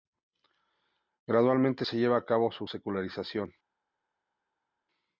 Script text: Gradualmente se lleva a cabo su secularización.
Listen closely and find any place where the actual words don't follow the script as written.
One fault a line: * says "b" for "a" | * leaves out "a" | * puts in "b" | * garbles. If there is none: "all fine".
all fine